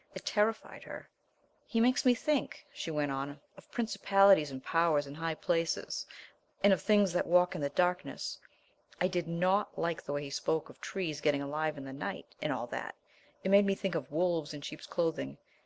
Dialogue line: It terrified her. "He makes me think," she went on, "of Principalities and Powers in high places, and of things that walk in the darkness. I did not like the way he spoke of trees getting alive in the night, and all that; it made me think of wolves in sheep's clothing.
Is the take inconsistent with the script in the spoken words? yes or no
no